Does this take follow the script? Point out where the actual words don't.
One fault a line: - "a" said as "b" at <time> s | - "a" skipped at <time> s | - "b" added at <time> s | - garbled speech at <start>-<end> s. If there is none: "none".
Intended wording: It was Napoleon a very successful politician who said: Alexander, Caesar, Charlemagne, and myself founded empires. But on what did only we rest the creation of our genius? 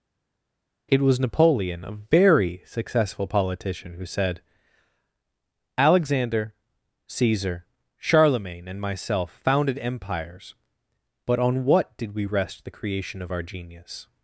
- "only" skipped at 12.1 s